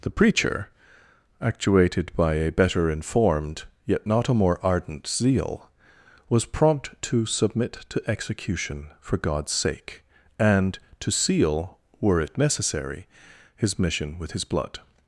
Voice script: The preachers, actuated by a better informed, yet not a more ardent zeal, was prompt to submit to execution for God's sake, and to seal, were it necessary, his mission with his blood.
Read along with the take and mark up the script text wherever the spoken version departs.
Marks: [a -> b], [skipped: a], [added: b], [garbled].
The [preachers, -> preacher] actuated by a better informed, yet not a more ardent zeal, was prompt to submit to execution for God's sake, and to seal, were it necessary, his mission with his blood.